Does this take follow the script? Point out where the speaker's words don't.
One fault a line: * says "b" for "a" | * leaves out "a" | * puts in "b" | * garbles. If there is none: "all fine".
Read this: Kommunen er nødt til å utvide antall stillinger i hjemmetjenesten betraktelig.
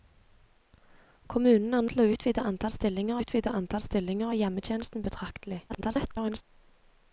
* leaves out "nødt"
* puts in "utvide antall stillinger"
* garbles